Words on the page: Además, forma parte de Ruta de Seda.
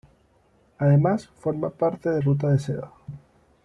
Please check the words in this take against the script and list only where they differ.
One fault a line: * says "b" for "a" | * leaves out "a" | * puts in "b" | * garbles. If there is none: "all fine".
all fine